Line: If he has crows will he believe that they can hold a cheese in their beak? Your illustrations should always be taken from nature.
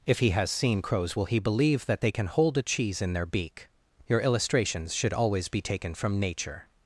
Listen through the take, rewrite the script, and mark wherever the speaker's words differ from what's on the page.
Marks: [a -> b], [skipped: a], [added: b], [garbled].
If he has [added: seen] crows will he believe that they can hold a cheese in their beak? Your illustrations should always be taken from nature.